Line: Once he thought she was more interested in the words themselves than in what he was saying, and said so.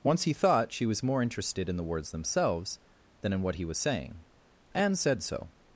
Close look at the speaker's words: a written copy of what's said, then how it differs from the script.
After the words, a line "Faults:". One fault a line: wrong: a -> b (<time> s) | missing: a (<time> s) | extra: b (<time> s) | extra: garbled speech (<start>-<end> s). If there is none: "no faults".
Once he thought she was more interested in the words themselves than in what he was saying, and said so.
Faults:
no faults